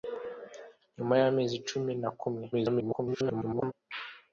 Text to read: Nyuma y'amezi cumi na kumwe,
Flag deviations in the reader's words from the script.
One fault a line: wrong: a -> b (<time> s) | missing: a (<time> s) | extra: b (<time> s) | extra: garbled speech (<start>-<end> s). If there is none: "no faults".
extra: garbled speech (2.5-3.7 s)